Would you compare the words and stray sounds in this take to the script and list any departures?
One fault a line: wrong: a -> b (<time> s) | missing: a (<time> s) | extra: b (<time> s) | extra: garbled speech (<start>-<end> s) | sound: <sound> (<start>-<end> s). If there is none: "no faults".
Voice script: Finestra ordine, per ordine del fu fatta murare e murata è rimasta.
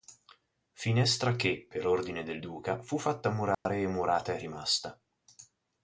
wrong: ordine -> che (1.4 s)
extra: duca (2.4 s)
sound: dropout (3.5-3.7 s)